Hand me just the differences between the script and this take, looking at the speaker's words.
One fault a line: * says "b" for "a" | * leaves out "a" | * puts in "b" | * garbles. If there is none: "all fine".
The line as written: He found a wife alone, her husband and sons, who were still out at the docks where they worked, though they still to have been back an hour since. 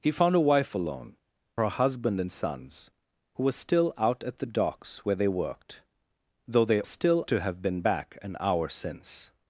all fine